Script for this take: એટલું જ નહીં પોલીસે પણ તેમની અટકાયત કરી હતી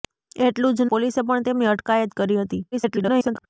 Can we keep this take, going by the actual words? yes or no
no